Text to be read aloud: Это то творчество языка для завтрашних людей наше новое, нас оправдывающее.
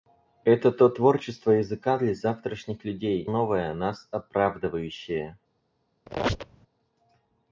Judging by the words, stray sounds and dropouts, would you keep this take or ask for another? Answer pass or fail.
fail